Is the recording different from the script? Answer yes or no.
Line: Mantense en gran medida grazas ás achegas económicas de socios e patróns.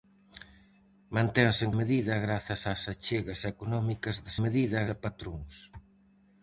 yes